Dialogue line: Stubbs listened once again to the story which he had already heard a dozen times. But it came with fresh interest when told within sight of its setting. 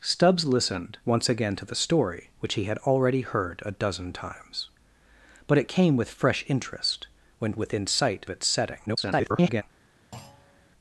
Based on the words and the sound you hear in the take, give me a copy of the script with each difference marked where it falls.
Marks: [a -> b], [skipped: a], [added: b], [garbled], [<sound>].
Stubbs listened once again to the story which he had already heard a dozen times. But it came with fresh interest when [skipped: told] within sight [skipped: of] its setting. [garbled] [thud]